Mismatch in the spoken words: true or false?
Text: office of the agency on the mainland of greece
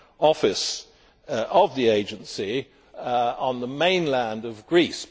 false